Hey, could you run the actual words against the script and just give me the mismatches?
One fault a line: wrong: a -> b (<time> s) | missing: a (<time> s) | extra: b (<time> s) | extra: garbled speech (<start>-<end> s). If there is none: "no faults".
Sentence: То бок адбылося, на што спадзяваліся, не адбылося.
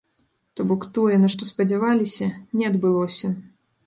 wrong: адбылося -> тое (0.9 s)